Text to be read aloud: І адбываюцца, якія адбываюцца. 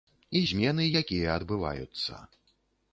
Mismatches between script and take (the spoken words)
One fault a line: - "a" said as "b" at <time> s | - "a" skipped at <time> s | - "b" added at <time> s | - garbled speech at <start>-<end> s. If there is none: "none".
- "адбываюцца" said as "змены" at 0.5 s